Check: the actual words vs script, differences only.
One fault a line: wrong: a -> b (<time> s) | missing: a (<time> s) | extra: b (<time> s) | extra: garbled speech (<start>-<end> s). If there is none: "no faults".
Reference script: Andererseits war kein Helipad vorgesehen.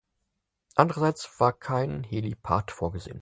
no faults